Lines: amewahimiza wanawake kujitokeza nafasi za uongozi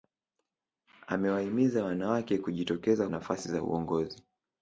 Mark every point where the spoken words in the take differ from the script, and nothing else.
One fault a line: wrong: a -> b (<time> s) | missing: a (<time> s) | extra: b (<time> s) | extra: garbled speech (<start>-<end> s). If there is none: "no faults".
no faults